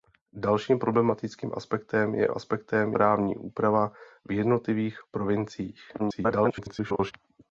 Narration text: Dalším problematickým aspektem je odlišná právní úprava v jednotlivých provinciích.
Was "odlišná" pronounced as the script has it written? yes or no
no